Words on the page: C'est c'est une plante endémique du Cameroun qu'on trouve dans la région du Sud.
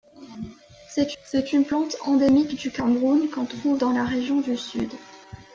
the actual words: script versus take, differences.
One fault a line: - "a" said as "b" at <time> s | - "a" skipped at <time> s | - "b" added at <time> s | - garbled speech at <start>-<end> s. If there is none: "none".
none